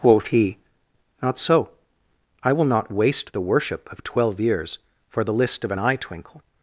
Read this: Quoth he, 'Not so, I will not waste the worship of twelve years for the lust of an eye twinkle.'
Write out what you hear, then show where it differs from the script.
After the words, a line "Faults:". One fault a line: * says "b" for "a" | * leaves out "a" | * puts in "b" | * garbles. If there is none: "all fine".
Quoth he, 'Not so, I will not waste the worship of twelve years for the list of an eye twinkle.'
Faults:
* says "list" for "lust"